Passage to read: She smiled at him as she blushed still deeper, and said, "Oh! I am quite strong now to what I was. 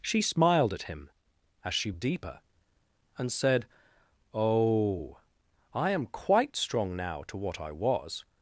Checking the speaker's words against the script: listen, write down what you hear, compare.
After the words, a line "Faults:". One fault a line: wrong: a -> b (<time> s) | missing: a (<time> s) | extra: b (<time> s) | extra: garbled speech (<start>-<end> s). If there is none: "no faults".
She smiled at him as she deeper, and said, "Oh! I am quite strong now to what I was.
Faults:
missing: blushed still (1.9 s)